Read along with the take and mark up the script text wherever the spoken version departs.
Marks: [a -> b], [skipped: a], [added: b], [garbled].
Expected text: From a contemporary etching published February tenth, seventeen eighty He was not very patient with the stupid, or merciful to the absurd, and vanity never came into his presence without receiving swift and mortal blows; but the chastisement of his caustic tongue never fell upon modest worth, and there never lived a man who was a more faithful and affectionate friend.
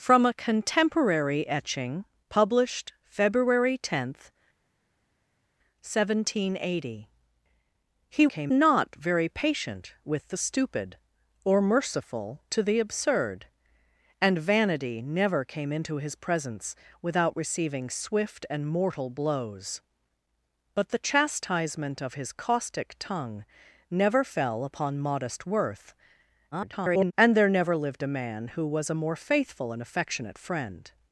From a contemporary etching published February tenth, seventeen eighty He [was -> came] not very patient with the stupid, or merciful to the absurd, and vanity never came into his presence without receiving swift and mortal blows; but the chastisement of his caustic tongue never fell upon modest worth, [garbled] and there never lived a man who was a more faithful and affectionate friend.